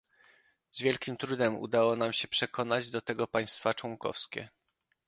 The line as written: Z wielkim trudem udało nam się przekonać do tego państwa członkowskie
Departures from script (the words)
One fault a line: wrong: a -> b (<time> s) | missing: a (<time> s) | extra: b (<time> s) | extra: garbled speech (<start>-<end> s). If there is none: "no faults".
no faults